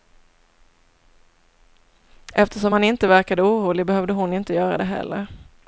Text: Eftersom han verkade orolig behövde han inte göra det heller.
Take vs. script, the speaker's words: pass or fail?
fail